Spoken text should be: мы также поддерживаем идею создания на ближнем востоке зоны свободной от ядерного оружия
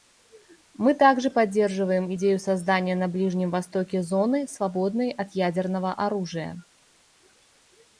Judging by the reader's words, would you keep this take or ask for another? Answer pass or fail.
pass